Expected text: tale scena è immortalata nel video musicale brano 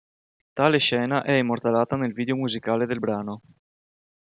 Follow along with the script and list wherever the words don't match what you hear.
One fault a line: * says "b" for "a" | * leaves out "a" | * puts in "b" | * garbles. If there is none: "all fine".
* puts in "del"